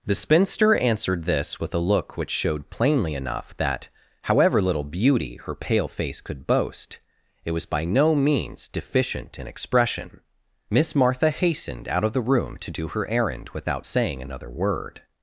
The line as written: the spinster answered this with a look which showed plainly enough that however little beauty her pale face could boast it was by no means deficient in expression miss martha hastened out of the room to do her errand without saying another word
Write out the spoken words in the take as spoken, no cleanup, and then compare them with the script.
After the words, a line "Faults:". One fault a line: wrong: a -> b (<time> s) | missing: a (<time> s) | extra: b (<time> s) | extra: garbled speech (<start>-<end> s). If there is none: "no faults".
the spinster answered this with a look which showed plainly enough that however little beauty her pale face could boast it was by no means deficient in expression miss martha hastened out of the room to do her errand without saying another word
Faults:
no faults